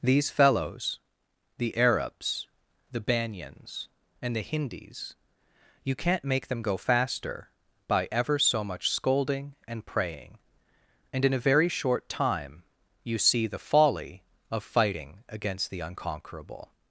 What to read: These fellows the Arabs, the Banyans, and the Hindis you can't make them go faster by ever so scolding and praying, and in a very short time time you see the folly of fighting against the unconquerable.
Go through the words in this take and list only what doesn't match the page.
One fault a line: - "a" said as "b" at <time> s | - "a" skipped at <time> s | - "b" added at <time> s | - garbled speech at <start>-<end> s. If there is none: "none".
- "much" added at 8.6 s
- "time" skipped at 12.6 s